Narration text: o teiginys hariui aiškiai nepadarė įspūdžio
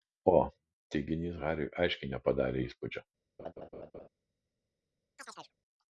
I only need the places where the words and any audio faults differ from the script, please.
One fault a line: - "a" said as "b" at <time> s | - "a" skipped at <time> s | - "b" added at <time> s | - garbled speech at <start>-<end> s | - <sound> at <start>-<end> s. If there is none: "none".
- laugh at 3.4-4.1 s
- chirp at 5.2-5.5 s